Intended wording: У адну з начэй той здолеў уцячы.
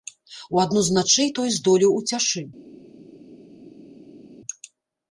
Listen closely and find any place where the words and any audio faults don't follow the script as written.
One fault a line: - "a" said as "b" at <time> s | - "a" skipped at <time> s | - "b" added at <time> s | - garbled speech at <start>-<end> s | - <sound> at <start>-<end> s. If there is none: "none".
none